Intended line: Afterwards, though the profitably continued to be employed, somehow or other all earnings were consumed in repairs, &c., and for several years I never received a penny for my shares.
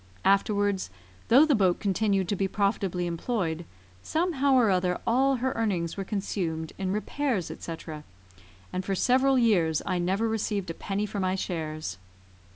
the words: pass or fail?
fail